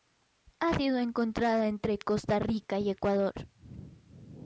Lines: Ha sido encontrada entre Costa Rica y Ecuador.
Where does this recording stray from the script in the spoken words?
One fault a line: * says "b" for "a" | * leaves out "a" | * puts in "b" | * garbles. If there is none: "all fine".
all fine